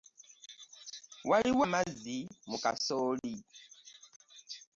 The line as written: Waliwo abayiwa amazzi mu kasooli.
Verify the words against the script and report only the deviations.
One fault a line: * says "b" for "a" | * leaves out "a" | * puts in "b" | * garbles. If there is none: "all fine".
* leaves out "abayiwa"